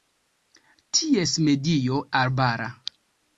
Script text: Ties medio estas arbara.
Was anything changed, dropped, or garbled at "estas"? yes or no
yes